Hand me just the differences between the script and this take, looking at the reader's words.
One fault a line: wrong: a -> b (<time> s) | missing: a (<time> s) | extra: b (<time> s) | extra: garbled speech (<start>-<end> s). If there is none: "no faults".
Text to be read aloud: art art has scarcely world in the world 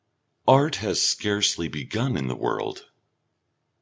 missing: art (0.8 s)
wrong: world -> begun (1.7 s)